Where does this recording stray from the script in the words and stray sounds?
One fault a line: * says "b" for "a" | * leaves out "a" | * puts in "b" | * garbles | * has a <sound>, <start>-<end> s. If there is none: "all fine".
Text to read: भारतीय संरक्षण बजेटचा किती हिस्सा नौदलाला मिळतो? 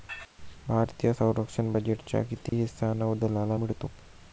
* has a dropout, 2.5-2.5 s